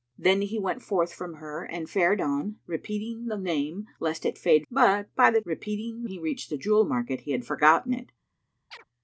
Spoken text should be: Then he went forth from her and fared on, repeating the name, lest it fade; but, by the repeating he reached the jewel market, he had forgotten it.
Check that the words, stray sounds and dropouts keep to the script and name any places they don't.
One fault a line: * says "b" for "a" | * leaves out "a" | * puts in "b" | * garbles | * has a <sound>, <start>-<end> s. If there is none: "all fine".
* has a chirp, 8.7-8.8 s